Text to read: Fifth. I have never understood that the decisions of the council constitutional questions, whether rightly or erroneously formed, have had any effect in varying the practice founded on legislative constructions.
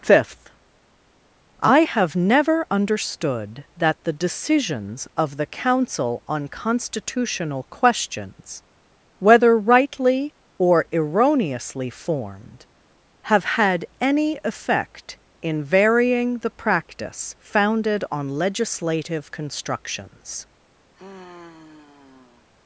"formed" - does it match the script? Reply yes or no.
yes